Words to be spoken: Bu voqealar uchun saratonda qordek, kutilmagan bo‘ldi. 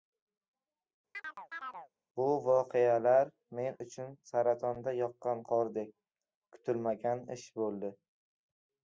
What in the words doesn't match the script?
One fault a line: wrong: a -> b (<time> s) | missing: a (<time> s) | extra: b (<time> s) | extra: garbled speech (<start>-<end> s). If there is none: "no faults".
extra: men (3.6 s)
extra: yoqqan (5.0 s)
extra: ish (7.4 s)